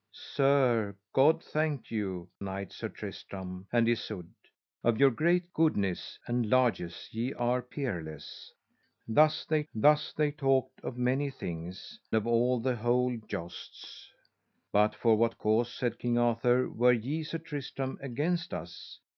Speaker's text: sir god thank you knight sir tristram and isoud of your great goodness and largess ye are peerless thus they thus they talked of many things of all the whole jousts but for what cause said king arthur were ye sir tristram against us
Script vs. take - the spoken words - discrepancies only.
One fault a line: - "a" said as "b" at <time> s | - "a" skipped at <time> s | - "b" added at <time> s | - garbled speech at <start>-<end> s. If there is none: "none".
none